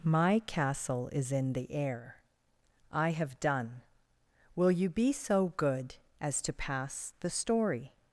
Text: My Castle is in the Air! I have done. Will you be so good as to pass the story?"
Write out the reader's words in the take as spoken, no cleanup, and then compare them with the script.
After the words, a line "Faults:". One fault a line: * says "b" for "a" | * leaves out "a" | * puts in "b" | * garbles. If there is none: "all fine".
My Castle is in the Air! I have done. Will you be so good as to pass the story?"
Faults:
all fine